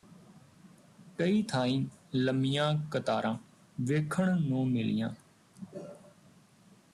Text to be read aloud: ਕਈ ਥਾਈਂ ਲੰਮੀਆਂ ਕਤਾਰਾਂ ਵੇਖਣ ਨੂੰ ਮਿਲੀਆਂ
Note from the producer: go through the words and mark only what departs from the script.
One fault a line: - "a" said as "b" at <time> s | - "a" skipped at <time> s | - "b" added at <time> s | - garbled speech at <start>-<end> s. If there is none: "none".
none